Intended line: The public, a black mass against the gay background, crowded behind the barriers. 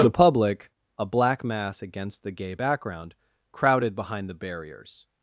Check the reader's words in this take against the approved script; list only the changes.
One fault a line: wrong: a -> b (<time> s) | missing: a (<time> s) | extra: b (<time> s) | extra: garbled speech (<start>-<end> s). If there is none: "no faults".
no faults